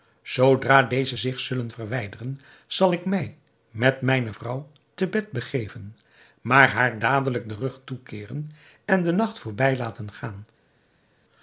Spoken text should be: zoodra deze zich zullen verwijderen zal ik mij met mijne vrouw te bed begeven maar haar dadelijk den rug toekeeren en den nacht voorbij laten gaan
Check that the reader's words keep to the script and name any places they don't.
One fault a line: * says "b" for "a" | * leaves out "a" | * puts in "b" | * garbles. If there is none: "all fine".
all fine